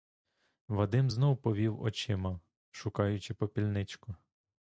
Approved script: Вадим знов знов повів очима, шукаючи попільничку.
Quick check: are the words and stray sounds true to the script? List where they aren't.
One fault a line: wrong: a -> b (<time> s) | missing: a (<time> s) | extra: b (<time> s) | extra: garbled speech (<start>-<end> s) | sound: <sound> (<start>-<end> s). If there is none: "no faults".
missing: знов (1.4 s)